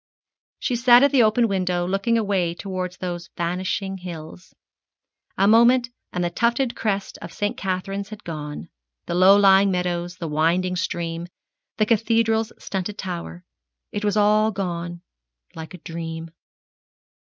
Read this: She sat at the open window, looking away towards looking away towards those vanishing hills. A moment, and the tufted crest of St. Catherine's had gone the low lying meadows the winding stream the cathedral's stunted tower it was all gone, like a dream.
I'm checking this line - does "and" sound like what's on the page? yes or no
yes